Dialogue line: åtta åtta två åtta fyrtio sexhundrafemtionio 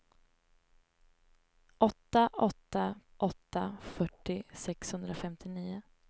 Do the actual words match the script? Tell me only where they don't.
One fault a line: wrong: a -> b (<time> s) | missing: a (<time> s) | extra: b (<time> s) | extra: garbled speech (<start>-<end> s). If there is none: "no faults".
missing: två (3.0 s)